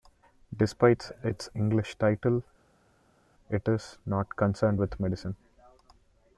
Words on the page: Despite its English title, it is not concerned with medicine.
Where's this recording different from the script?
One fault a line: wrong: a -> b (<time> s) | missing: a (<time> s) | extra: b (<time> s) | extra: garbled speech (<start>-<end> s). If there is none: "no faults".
no faults